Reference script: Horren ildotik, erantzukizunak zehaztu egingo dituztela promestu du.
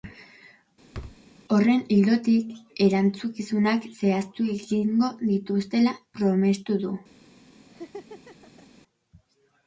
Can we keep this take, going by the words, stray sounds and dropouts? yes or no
no